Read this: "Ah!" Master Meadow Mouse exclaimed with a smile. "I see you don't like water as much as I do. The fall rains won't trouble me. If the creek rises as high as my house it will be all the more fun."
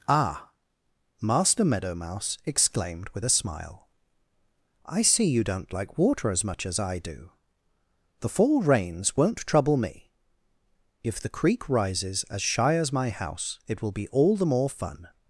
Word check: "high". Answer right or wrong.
wrong